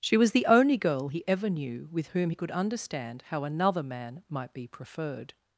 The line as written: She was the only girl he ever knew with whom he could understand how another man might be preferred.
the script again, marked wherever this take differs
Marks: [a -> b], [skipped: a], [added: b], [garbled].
She was the only girl he ever knew with whom he could understand how another man might be preferred.